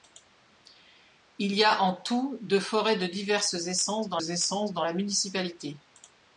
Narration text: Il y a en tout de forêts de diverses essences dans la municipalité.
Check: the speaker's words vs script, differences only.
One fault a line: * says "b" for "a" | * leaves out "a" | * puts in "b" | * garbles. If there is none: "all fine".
* puts in "essences dans"